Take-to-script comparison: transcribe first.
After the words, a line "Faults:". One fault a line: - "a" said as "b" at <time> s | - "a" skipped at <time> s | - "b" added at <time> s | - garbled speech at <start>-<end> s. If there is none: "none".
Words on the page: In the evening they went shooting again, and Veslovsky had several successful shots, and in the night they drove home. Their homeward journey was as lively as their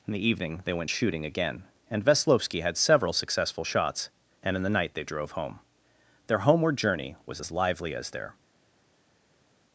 In the evening they went shooting again, and Veslovsky had several successful shots, and in the night they drove home. Their homeward journey was as lively as their
Faults:
none